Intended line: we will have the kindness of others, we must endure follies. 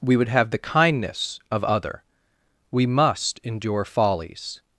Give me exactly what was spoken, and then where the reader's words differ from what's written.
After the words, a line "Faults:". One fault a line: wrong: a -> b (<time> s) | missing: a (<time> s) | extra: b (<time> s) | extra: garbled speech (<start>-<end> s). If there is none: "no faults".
we would have the kindness of other, we must endure follies.
Faults:
wrong: will -> would (0.2 s)
wrong: others -> other (1.6 s)